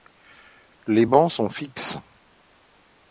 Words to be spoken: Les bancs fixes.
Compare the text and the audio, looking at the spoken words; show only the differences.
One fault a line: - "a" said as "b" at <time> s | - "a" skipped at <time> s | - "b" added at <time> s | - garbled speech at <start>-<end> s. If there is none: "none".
- "sont" added at 1.3 s